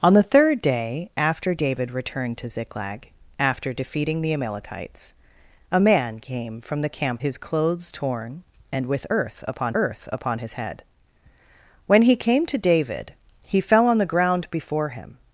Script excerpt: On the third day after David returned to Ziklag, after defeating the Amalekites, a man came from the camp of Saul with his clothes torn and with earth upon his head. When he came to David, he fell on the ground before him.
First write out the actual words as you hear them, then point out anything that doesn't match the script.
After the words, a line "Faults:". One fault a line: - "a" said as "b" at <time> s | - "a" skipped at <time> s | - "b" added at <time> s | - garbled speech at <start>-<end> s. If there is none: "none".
On the third day after David returned to Ziklag, after defeating the Amalekites, a man came from the camp his clothes torn and with earth upon earth upon his head. When he came to David, he fell on the ground before him.
Faults:
- "of Saul with" skipped at 7.2 s
- "earth upon" added at 9.7 s